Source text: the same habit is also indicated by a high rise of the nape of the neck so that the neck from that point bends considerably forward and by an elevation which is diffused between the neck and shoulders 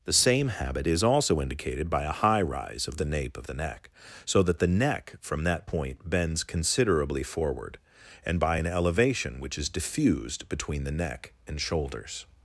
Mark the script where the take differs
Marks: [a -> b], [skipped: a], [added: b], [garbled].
the same habit is also indicated by a high rise of the nape of the neck so that the neck from that point bends considerably forward and by an elevation which is diffused between the neck and shoulders